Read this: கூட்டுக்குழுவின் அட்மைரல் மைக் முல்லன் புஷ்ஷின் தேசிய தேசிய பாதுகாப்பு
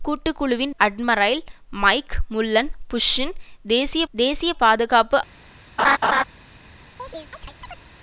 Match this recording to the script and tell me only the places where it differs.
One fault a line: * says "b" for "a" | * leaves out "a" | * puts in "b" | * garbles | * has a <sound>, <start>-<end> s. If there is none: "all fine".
* has a laugh, 5.8-6.2 s
* has a chirp, 7.0-7.8 s